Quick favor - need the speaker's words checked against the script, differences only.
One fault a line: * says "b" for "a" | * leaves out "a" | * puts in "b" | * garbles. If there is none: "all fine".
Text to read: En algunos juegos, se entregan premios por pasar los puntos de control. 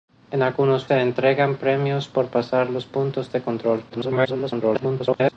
* leaves out "juegos"
* garbles